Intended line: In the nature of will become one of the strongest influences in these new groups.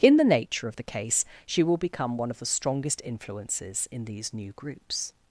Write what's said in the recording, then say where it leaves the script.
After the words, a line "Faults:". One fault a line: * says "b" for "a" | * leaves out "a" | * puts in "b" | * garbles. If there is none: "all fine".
In the nature of the case she will become one of the strongest influences in these new groups.
Faults:
* puts in "the case she"